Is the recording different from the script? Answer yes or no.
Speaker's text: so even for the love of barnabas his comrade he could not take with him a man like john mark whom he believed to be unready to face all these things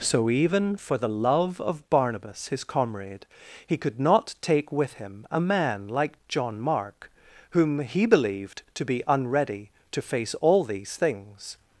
no